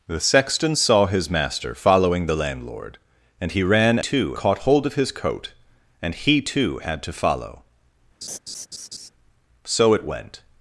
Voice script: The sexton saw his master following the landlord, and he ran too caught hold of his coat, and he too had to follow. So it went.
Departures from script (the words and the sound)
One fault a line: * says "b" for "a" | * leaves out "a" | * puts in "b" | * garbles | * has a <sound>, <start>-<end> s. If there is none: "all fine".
* has a laugh, 8.2-9.1 s